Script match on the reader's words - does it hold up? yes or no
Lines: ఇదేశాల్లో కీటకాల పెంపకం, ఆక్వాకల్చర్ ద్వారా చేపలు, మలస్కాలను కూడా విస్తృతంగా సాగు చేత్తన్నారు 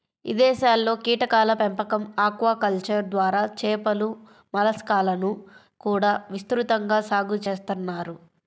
yes